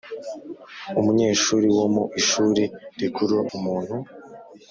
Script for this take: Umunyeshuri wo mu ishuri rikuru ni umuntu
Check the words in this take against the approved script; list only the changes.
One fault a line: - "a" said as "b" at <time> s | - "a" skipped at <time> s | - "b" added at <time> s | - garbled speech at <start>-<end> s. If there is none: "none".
- "ni" skipped at 3.4 s